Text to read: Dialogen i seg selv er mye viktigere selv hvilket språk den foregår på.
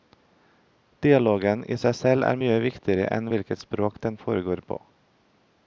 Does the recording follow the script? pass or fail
fail